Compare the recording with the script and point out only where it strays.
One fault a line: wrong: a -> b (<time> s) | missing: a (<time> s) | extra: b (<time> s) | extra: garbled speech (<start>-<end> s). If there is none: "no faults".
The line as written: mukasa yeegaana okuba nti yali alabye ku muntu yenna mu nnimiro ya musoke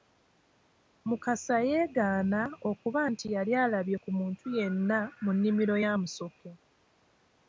no faults